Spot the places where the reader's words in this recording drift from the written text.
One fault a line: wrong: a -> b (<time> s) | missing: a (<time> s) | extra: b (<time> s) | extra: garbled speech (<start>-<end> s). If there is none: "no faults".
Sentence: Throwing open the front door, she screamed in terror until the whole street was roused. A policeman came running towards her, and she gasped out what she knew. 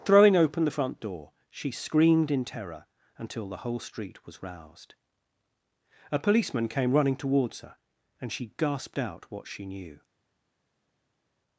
no faults